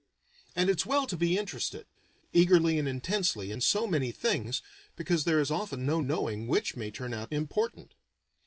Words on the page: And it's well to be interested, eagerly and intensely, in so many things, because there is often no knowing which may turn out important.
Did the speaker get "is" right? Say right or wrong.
right